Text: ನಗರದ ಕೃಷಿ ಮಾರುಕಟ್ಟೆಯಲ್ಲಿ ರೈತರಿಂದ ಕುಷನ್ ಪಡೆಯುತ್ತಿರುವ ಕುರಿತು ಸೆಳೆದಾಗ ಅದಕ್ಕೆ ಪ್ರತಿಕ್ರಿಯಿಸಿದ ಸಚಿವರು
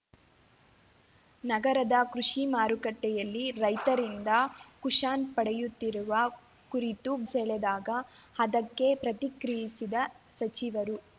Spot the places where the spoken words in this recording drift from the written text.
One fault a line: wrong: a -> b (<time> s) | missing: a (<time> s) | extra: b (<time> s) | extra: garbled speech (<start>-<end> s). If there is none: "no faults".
no faults